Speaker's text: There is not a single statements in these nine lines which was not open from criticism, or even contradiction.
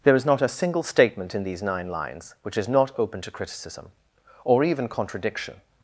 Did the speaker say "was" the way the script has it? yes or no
no